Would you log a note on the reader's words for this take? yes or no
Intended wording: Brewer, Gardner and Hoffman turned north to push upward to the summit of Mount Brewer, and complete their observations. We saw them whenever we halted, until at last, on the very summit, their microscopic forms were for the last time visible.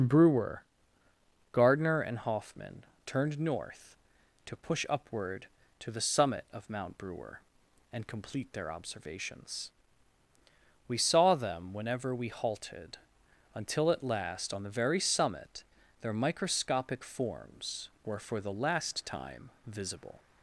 no